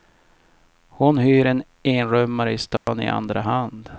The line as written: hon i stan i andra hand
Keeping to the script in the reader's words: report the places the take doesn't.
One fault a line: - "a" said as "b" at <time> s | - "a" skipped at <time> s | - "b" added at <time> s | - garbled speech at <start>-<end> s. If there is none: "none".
- "hyr en enrummare" added at 1.2 s